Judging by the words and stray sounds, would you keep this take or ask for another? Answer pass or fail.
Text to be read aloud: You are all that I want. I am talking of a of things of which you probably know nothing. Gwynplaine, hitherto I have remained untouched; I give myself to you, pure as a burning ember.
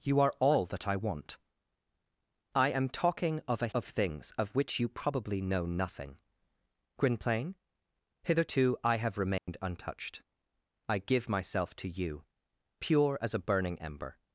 fail